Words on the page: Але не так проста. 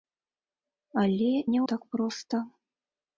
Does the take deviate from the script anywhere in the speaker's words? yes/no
no